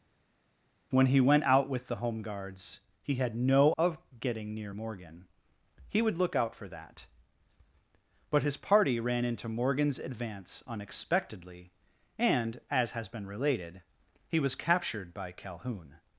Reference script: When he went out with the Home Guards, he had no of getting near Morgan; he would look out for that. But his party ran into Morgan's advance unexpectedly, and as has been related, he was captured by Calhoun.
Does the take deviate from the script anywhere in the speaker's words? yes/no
no